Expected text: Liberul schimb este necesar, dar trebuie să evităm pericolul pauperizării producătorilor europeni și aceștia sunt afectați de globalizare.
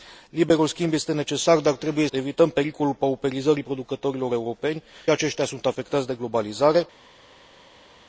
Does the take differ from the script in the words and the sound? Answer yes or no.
yes